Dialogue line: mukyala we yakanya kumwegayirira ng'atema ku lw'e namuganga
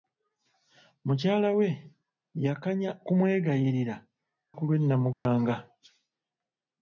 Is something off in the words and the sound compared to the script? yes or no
yes